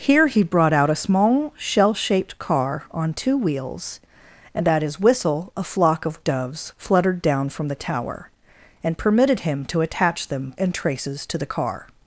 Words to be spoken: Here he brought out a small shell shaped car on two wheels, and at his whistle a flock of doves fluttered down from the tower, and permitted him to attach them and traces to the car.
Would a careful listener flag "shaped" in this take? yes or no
no